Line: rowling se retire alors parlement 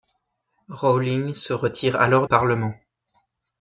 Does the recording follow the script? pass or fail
pass